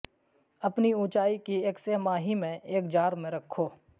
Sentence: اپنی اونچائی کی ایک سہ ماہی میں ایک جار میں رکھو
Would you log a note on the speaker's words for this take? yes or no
no